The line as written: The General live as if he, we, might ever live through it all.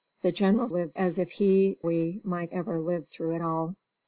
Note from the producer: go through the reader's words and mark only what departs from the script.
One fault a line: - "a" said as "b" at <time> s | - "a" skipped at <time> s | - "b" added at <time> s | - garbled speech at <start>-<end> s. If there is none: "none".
none